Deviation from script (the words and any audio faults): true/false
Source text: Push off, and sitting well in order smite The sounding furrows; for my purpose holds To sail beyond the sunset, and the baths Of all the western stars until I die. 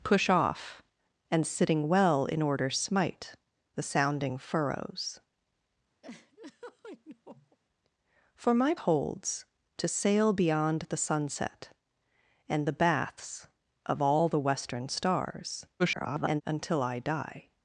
true